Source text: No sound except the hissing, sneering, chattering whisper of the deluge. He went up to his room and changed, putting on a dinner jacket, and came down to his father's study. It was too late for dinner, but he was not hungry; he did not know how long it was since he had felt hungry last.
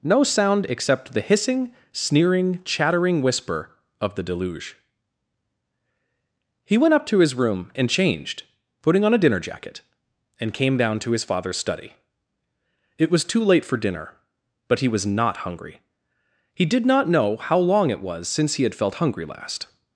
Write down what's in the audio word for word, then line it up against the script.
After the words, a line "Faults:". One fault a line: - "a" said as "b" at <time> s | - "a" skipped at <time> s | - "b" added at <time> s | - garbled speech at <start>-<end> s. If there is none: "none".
No sound except the hissing, sneering, chattering whisper of the deluge. He went up to his room and changed, putting on a dinner jacket, and came down to his father's study. It was too late for dinner, but he was not hungry; he did not know how long it was since he had felt hungry last.
Faults:
none